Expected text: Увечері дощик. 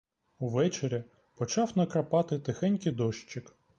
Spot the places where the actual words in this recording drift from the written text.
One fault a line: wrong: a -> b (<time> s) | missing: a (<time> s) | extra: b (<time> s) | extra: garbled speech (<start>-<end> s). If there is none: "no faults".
extra: почав накрапати тихенький (1.4 s)